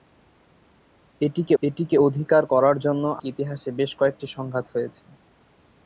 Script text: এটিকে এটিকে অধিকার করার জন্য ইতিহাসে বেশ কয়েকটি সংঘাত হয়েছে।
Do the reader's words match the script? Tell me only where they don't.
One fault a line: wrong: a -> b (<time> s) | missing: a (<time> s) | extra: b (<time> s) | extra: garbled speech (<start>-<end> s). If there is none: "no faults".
no faults